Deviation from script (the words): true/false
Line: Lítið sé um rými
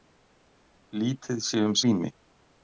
false